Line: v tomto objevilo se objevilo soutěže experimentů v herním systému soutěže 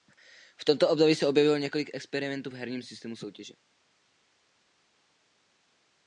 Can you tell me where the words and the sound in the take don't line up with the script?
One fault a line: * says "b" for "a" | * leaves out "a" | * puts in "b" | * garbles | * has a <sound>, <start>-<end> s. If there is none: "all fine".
* says "období" for "objevilo"
* says "několik" for "soutěže"